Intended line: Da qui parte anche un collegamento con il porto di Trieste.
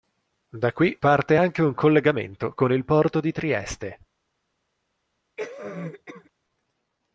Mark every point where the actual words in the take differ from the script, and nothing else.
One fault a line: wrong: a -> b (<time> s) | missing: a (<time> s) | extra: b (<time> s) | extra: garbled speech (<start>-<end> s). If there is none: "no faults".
no faults